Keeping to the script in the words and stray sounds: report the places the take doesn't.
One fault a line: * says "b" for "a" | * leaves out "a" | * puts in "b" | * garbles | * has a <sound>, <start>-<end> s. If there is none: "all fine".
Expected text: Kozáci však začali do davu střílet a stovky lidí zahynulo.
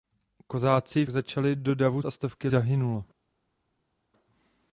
* leaves out "však"
* leaves out "střílet"
* leaves out "lidí"